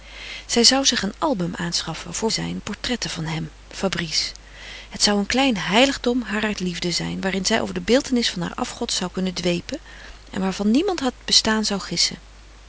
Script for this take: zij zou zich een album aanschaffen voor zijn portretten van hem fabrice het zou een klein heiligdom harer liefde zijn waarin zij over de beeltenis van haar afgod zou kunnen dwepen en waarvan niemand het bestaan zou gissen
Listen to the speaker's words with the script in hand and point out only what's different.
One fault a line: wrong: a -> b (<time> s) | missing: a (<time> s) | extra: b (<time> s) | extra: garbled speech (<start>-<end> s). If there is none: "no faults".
no faults